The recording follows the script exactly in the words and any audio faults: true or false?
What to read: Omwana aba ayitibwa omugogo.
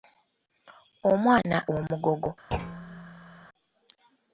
false